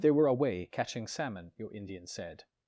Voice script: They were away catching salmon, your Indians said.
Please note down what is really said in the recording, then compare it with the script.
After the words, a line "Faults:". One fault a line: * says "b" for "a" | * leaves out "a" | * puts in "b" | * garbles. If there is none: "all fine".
They were away catching salmon, your Indians said.
Faults:
all fine